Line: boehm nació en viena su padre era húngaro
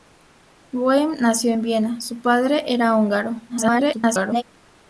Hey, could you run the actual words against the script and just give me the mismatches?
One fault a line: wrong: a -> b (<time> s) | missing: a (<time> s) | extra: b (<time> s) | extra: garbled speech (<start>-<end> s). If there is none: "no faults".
extra: garbled speech (3.5-4.4 s)